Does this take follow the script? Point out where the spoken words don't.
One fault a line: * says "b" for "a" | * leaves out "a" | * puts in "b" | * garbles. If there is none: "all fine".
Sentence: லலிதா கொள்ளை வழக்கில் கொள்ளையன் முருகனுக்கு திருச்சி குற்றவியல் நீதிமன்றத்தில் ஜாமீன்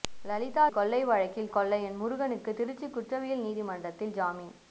all fine